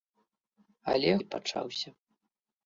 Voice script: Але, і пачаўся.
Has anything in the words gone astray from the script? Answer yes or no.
no